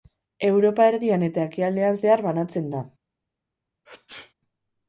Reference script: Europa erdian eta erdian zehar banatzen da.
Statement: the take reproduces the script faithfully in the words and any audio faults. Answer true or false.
false